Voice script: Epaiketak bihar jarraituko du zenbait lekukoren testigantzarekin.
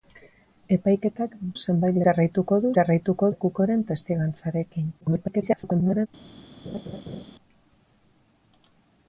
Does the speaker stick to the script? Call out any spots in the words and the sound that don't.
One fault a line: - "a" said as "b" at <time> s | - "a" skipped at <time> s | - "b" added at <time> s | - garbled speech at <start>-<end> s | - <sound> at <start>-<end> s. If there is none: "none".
- "bihar" said as "zenbait" at 1.6 s
- "zenbait" said as "jarraituko" at 2.8 s
- garbled speech at 5.0-6.1 s
- laugh at 6.6-7.2 s